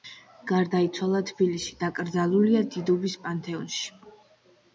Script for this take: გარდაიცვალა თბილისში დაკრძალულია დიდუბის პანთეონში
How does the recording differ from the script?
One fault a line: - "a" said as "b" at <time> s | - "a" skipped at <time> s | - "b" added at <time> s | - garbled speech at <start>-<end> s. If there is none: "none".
none